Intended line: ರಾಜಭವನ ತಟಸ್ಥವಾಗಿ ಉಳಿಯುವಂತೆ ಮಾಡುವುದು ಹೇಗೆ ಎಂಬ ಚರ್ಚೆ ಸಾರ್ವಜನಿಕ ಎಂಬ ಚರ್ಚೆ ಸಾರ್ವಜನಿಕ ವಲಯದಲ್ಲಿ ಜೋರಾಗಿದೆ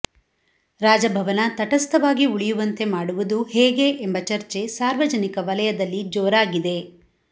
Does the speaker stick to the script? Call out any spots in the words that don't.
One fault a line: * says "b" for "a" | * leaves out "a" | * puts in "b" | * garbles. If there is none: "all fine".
* leaves out "ಎಂಬ ಚರ್ಚೆ ಸಾರ್ವಜನಿಕ"